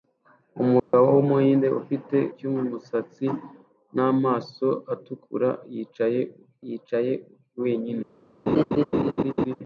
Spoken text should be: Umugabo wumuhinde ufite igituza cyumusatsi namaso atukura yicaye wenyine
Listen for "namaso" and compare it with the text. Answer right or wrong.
right